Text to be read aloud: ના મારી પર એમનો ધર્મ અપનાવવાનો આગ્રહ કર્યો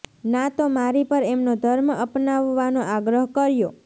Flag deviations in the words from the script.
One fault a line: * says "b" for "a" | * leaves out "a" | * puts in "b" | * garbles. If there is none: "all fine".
* puts in "તો"